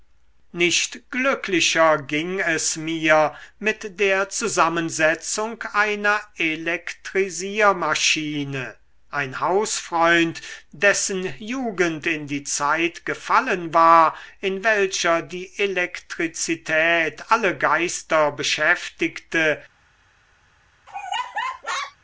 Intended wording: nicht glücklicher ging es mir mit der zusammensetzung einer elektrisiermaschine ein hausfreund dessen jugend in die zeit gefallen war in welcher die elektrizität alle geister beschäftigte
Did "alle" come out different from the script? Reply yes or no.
no